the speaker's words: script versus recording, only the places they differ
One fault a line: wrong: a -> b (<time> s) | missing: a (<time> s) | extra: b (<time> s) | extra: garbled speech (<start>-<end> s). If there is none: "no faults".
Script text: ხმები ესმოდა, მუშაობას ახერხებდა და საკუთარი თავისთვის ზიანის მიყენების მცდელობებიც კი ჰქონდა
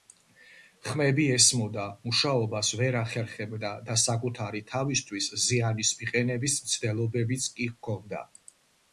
extra: ვერ (2.8 s)